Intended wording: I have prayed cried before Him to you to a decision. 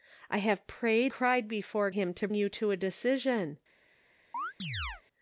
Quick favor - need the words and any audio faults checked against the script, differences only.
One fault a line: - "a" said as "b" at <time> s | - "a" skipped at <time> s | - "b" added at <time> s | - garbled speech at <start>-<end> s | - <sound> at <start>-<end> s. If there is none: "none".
- chirp at 4.3-5.0 s